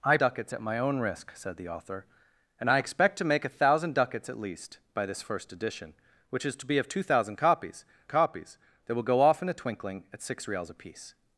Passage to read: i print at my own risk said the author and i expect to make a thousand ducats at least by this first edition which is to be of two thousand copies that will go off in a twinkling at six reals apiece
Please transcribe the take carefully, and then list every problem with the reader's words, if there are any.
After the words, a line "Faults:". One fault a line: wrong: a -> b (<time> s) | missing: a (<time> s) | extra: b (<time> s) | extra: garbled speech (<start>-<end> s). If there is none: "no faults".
i ducats at my own risk said the author and i expect to make a thousand ducats at least by this first edition which is to be of two thousand copies copies that will go off in a twinkling at six reals apiece
Faults:
wrong: print -> ducats (0.2 s)
extra: copies (8.1 s)